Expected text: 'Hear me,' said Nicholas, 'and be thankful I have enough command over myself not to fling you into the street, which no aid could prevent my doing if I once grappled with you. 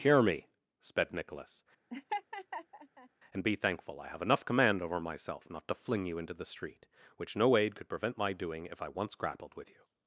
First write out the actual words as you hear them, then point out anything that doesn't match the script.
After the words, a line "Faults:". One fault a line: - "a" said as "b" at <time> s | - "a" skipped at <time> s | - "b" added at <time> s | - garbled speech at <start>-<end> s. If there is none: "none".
'Hear me,' sped Nicholas, 'and be thankful I have enough command over myself not to fling you into the street, which no aid could prevent my doing if I once grappled with you.
Faults:
- "said" said as "sped" at 0.8 s